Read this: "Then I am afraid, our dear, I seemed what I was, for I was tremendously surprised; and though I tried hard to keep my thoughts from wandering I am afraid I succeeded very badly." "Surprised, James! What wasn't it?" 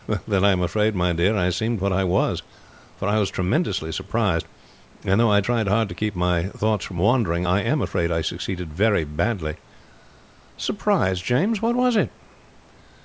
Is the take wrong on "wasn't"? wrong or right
wrong